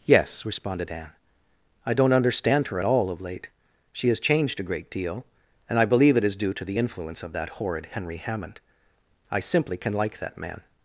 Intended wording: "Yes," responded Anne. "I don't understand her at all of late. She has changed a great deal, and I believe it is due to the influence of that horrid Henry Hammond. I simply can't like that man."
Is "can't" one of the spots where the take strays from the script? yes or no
yes